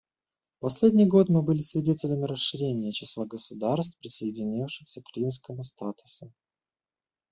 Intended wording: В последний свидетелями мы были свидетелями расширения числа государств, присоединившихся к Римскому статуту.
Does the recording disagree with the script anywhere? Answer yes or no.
yes